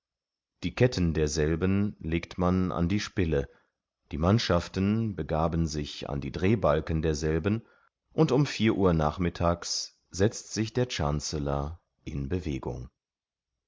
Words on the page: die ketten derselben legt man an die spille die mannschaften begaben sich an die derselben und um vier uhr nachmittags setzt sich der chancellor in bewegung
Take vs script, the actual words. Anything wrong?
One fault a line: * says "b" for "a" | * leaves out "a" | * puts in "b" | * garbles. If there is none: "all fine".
* puts in "drehbalken"